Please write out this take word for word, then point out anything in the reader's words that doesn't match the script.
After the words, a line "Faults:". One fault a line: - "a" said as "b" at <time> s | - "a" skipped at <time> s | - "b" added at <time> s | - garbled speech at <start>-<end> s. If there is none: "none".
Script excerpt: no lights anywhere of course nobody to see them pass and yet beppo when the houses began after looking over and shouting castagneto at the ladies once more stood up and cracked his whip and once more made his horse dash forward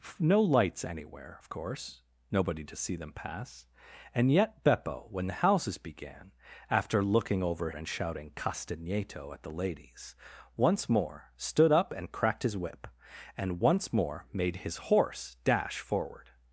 no lights anywhere of course nobody to see them pass and yet beppo when the houses began after looking over and shouting castagneto at the ladies once more stood up and cracked his whip and once more made his horse dash forward
Faults:
none